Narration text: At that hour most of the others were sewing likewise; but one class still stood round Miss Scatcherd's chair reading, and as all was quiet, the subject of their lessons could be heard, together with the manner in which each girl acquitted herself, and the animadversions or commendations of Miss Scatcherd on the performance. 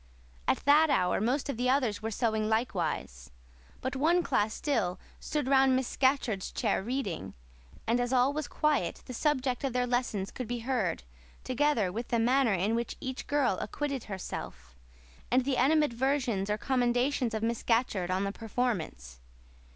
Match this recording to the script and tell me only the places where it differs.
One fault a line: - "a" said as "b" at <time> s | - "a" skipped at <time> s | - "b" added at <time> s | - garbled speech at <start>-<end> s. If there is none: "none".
none